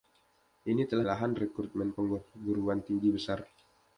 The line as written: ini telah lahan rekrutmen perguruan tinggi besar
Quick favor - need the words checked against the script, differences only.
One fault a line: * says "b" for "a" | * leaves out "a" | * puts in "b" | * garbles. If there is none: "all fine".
all fine